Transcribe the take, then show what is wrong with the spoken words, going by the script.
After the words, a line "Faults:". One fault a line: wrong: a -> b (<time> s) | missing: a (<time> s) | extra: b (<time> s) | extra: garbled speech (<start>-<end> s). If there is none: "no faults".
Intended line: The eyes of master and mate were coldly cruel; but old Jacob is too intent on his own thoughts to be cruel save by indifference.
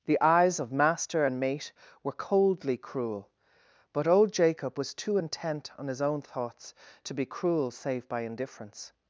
The eyes of master and mate were coldly cruel; but old Jacob was too intent on his own thoughts to be cruel save by indifference.
Faults:
wrong: is -> was (4.8 s)